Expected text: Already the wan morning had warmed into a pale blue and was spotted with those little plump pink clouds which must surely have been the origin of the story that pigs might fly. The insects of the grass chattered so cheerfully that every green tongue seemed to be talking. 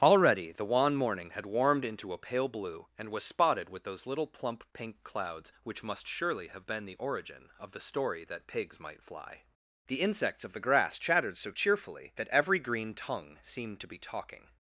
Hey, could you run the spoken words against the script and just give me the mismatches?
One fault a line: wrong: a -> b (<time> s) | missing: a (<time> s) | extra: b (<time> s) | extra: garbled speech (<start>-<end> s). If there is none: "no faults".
no faults